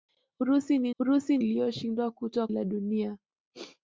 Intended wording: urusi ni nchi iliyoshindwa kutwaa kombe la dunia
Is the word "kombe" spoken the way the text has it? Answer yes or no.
no